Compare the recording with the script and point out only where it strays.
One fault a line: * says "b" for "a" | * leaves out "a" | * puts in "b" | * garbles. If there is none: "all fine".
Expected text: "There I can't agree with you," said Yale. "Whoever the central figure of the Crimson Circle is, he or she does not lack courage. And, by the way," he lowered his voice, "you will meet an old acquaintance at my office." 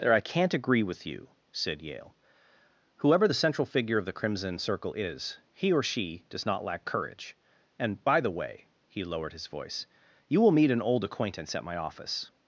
all fine